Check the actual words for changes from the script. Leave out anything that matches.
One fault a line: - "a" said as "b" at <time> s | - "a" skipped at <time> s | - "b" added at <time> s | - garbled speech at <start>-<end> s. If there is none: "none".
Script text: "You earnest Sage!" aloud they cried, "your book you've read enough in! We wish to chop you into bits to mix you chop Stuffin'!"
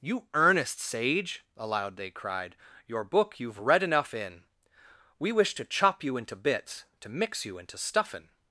- "chop" said as "into" at 7.6 s